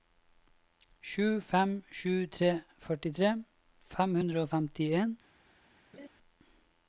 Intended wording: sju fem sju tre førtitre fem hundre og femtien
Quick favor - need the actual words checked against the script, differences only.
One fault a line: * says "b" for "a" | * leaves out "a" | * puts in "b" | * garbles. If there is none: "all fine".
all fine